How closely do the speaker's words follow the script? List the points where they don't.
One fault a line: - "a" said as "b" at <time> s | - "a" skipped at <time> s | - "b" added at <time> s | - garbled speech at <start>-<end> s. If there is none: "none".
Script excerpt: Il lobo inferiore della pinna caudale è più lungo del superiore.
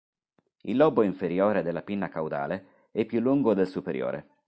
none